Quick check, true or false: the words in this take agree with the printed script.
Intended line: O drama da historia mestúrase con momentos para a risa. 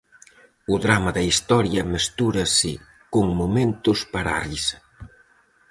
true